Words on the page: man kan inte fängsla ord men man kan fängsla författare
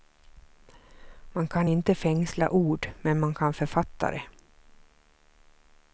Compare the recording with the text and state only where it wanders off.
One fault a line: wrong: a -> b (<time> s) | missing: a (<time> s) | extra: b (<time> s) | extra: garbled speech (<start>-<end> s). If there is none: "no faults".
missing: fängsla (3.5 s)